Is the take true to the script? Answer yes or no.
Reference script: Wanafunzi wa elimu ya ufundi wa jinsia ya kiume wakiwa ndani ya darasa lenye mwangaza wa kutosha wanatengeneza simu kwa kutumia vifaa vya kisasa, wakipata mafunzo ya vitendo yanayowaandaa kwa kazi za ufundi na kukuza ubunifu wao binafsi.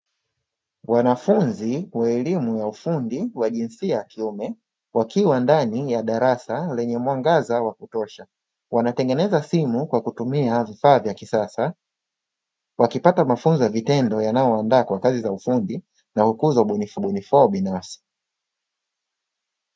no